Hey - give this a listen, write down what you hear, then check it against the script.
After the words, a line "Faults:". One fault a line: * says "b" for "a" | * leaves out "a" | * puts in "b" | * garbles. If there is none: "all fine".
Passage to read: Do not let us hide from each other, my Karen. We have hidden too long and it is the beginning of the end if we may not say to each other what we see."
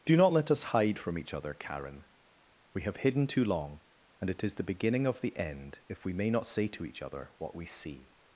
Do not let us hide from each other, Karen. We have hidden too long and it is the beginning of the end if we may not say to each other what we see."
Faults:
* leaves out "my"